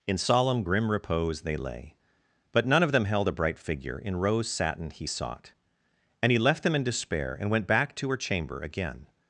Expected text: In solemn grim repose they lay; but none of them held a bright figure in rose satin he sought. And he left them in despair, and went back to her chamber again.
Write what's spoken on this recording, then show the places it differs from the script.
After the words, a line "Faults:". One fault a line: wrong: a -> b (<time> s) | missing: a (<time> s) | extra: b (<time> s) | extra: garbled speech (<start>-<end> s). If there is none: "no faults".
In solemn grim repose they lay; but none of them held a bright figure in rose satin he sought. And he left them in despair, and went back to her chamber again.
Faults:
no faults